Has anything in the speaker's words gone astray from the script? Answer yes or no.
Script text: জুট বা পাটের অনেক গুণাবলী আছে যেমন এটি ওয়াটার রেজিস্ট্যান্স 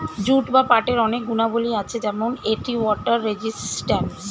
no